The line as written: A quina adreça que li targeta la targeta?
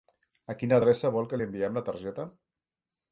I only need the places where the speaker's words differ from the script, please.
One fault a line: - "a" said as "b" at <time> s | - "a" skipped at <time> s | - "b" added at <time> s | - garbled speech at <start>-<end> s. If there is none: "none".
- "vol" added at 1.2 s
- "targeta" said as "enviem" at 1.5 s